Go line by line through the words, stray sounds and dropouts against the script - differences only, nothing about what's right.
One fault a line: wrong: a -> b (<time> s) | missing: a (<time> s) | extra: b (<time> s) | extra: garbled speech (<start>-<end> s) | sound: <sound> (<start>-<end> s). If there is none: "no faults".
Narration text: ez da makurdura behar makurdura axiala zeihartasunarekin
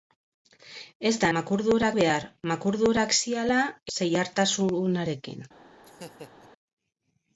sound: laugh (5.8-6.5 s)